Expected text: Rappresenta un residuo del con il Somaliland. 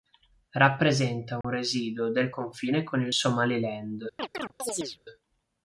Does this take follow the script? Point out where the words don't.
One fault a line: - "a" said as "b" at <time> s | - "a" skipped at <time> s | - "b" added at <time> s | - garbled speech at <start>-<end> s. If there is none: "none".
- "confine" added at 2.3 s